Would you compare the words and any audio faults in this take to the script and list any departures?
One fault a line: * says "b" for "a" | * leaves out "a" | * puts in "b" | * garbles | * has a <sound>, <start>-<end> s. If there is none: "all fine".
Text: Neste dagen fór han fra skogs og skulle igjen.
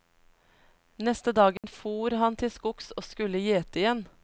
* has a dropout, 1.6-1.6 s
* says "til" for "fra"
* puts in "gjete"